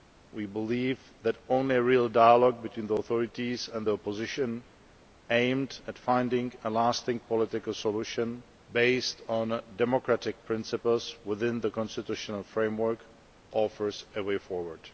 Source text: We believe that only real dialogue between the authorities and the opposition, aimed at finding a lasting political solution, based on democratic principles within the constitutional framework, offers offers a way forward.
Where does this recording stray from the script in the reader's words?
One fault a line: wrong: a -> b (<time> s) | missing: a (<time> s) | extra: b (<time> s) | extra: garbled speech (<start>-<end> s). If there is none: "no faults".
missing: offers (14.1 s)